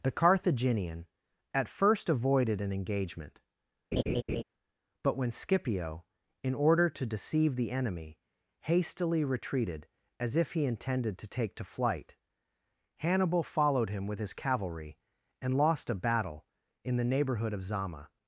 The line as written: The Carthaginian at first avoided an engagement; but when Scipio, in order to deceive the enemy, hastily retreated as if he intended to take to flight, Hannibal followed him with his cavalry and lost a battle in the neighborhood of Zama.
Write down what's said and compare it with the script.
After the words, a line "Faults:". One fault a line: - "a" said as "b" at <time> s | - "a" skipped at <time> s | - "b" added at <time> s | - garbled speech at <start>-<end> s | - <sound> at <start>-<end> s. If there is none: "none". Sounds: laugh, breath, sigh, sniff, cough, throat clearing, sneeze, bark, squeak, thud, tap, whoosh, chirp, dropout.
The Carthaginian at first avoided an engagement; but when Scipio, in order to deceive the enemy, hastily retreated as if he intended to take to flight, Hannibal followed him with his cavalry and lost a battle in the neighborhood of Zama.
Faults:
- laugh at 3.9-4.4 s